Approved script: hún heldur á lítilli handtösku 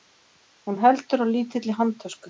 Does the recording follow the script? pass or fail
pass